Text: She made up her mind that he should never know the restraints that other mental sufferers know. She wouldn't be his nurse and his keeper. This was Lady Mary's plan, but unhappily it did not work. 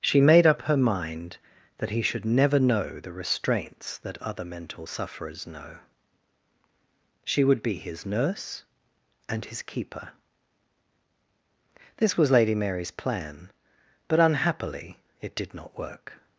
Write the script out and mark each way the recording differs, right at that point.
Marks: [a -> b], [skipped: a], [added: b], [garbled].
She made up her mind that he should never know the restraints that other mental sufferers know. She [wouldn't -> would] be his nurse and his keeper. This was Lady Mary's plan, but unhappily it did not work.